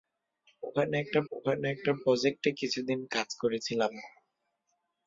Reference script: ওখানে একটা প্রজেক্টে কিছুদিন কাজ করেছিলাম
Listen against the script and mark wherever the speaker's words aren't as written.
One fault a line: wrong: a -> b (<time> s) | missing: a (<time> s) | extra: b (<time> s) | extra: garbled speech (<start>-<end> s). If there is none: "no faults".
extra: ওখানে একটা (1.3 s)